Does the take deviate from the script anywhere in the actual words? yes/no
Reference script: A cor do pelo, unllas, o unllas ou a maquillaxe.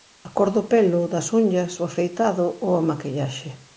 yes